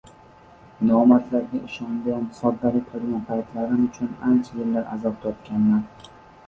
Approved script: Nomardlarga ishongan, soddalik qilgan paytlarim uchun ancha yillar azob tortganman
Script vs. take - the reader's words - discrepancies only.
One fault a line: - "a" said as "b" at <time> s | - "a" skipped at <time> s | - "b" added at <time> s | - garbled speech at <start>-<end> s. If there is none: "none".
none